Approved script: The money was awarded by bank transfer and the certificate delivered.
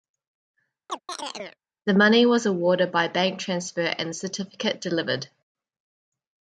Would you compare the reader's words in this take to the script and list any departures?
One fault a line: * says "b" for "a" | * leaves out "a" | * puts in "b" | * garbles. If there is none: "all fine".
all fine